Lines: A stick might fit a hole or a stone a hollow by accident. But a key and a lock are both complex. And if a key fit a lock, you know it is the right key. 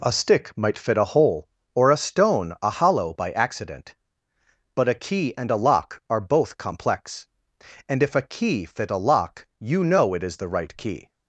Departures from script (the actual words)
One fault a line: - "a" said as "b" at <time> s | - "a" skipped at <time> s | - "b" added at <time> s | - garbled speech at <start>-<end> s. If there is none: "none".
none